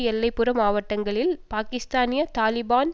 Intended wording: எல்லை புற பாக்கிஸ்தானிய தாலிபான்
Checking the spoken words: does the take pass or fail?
fail